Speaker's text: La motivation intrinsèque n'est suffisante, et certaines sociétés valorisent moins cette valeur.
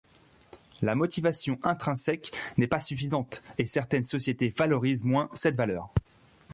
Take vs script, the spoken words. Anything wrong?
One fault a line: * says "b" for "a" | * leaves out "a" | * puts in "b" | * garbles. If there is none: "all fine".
* puts in "pas"